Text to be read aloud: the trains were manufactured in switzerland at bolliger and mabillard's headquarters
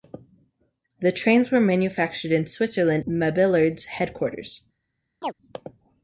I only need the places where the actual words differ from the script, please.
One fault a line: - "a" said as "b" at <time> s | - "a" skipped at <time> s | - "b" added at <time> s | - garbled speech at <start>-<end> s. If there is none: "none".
- "at bolliger and" skipped at 3.0 s